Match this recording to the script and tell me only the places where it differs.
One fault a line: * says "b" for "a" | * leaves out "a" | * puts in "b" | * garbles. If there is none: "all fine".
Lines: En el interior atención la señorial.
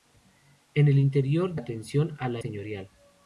all fine